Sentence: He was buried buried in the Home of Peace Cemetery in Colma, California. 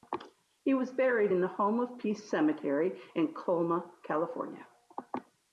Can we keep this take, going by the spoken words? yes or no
no